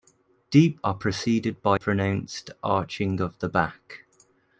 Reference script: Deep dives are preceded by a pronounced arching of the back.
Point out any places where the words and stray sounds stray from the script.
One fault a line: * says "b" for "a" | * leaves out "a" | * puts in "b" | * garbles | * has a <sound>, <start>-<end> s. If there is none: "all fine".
* leaves out "dives"
* leaves out "a"